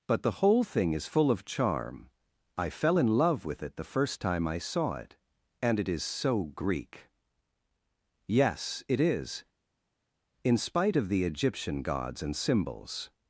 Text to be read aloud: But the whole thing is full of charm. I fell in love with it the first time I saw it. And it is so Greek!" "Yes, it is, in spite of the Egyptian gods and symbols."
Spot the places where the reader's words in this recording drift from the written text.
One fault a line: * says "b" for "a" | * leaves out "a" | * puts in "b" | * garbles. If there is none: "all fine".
all fine